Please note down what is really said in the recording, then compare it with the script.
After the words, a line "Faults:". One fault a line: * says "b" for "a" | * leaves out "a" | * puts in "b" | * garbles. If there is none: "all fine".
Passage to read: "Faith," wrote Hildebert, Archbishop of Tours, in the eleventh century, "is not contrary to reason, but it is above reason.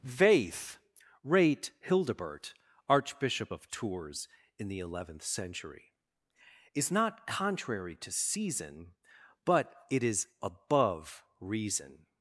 "Faith," rate Hildebert, Archbishop of Tours, in the eleventh century, "is not contrary to season, but it is above reason.
Faults:
* says "rate" for "wrote"
* says "season" for "reason"